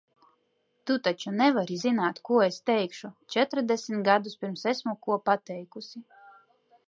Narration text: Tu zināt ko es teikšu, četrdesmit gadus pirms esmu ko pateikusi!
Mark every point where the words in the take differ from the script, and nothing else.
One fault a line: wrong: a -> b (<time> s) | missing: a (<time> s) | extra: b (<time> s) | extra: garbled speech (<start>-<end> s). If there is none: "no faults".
extra: taču nevari (1.1 s)